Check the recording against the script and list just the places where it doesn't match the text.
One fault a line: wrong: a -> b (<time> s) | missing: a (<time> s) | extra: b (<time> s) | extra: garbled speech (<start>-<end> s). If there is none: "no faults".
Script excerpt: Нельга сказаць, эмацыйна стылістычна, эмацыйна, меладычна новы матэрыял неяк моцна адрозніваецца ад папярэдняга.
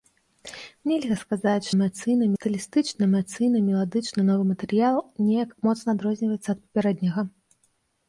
no faults